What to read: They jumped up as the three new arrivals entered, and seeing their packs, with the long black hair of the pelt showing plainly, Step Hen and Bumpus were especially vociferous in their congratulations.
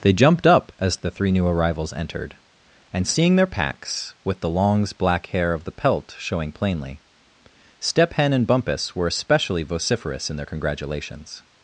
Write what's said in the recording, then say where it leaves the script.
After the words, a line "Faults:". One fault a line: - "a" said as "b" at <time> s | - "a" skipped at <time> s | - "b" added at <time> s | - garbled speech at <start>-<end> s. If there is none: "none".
They jumped up as the three new arrivals entered, and seeing their packs, with the longs black hair of the pelt showing plainly, Step Hen and Bumpus were especially vociferous in their congratulations.
Faults:
- "long" said as "longs" at 4.5 s